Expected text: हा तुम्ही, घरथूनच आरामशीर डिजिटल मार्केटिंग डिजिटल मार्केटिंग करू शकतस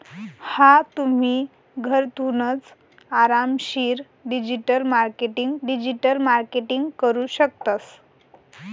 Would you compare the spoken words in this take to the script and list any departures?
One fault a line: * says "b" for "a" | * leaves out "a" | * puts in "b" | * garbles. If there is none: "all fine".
all fine